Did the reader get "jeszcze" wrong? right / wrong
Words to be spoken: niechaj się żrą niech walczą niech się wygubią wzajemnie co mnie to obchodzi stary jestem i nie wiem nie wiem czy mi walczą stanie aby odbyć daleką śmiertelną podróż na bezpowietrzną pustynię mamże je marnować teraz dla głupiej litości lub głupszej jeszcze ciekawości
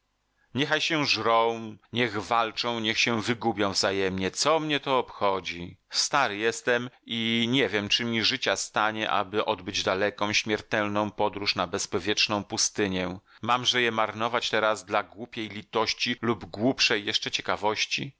right